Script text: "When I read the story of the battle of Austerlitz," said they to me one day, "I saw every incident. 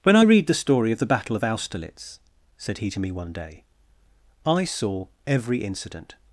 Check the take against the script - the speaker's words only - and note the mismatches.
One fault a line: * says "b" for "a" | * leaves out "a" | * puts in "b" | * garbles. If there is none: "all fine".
* says "he" for "they"